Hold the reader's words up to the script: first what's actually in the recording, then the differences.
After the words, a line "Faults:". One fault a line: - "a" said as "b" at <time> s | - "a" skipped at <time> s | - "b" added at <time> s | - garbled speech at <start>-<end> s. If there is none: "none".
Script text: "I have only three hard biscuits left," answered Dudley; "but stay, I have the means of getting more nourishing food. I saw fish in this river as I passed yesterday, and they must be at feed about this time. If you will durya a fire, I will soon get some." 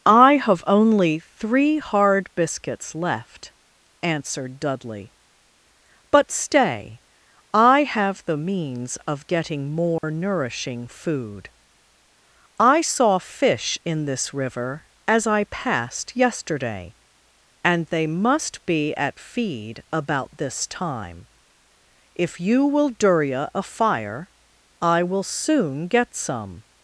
"I have only three hard biscuits left," answered Dudley; "but stay, I have the means of getting more nourishing food. I saw fish in this river as I passed yesterday, and they must be at feed about this time. If you will durya a fire, I will soon get some."
Faults:
none